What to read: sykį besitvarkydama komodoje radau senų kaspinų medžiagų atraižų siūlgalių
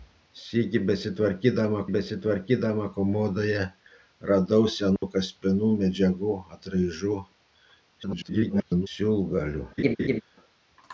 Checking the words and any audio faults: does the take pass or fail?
fail